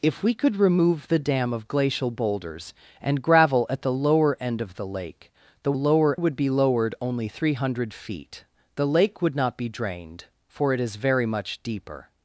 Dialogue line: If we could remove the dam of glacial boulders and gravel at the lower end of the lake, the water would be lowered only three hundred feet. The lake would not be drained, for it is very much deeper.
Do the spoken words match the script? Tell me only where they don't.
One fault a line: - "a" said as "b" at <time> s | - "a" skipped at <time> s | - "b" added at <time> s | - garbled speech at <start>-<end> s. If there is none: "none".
- "water" said as "lower" at 5.7 s